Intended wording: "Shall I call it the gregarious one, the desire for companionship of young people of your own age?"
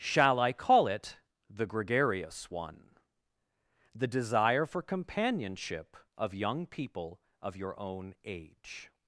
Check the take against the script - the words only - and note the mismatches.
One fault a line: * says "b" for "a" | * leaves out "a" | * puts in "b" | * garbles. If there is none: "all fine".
all fine